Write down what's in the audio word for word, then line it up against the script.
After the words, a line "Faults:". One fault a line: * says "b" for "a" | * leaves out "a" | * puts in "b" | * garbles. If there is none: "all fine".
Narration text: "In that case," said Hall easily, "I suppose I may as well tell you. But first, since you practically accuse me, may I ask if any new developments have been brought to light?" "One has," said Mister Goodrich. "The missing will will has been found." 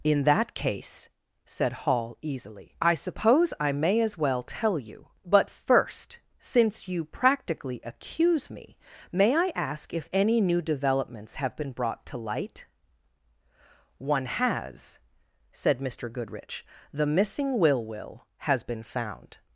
"In that case," said Hall easily, "I suppose I may as well tell you. But first, since you practically accuse me, may I ask if any new developments have been brought to light?" "One has," said Mister Goodrich. "The missing will will has been found."
Faults:
all fine